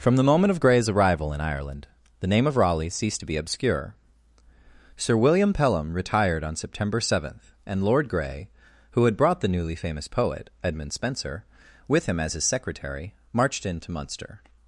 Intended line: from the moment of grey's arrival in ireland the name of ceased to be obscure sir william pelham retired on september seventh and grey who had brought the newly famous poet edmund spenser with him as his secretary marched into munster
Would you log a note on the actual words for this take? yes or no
yes